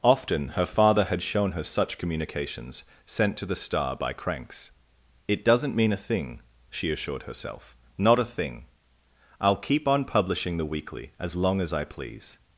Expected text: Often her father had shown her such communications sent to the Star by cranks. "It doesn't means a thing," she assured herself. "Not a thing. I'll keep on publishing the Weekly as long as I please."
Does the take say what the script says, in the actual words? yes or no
no